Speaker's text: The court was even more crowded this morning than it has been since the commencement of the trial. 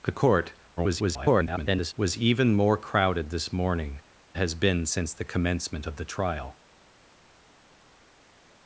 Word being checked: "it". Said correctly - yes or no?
no